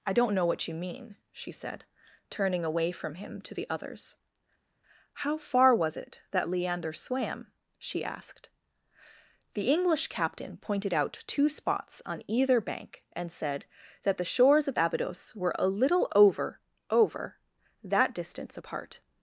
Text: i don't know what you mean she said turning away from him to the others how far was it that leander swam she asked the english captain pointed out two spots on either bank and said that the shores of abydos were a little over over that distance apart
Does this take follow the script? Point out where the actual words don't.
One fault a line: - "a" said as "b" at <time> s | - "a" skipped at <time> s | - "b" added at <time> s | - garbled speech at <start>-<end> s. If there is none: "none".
none